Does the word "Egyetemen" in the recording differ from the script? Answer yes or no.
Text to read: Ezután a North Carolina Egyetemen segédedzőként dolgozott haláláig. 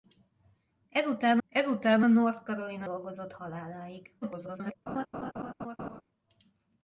yes